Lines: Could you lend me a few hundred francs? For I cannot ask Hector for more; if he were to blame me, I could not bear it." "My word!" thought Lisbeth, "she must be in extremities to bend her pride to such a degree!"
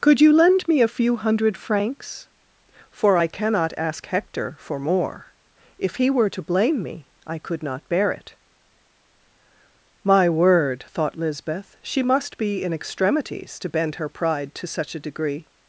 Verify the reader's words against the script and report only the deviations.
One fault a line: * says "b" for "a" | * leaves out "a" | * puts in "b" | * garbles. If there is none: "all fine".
all fine